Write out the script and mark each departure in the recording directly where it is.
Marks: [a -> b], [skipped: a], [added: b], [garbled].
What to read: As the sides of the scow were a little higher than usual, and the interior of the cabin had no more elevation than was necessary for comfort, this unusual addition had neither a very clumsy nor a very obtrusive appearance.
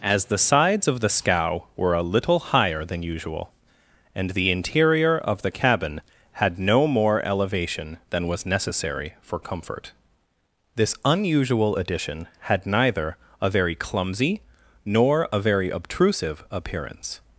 As the sides of the scow were a little higher than usual, and the interior of the cabin had no more elevation than was necessary for comfort, this unusual addition had neither a very clumsy nor a very obtrusive appearance.